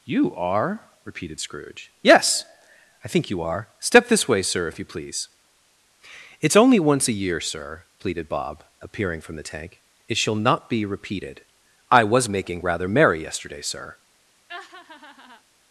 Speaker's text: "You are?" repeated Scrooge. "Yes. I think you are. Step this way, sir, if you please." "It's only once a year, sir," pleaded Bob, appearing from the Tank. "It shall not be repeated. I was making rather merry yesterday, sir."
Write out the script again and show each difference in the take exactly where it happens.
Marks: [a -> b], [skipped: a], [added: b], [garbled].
"You are?" repeated Scrooge. "Yes. I think you are. Step this way, sir, if you please." "It's only once a year, sir," pleaded Bob, appearing from the Tank. "It shall not be repeated. I was making rather merry yesterday, sir."